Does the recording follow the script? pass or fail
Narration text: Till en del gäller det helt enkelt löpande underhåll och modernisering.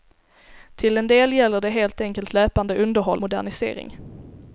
fail